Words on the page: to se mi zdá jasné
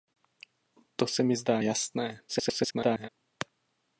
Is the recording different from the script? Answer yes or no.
yes